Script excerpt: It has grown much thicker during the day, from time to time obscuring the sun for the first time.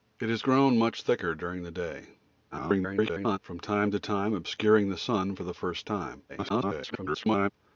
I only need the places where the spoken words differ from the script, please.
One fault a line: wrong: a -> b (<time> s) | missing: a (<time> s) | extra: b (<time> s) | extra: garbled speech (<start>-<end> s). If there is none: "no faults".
extra: garbled speech (2.5-3.4 s)
extra: garbled speech (6.3-7.5 s)